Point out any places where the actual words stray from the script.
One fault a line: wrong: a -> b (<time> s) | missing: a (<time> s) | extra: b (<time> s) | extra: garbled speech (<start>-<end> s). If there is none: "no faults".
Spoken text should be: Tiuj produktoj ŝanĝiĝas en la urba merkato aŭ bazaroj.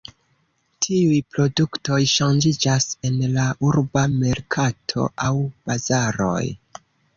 no faults